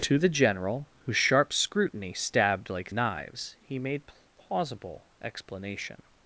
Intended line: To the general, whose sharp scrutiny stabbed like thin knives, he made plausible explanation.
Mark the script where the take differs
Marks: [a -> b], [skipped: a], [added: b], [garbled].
To the general, whose sharp scrutiny stabbed like [skipped: thin] knives, he made plausible explanation.